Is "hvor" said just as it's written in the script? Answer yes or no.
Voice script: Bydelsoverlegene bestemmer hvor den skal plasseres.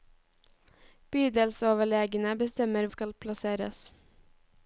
no